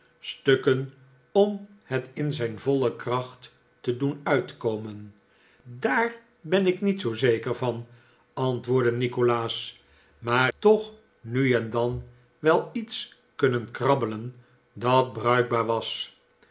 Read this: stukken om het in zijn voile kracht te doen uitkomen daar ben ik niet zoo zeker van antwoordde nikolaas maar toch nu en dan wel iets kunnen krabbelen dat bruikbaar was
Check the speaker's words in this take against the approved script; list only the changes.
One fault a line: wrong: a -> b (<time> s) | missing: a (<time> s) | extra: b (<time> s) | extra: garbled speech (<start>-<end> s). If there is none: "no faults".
no faults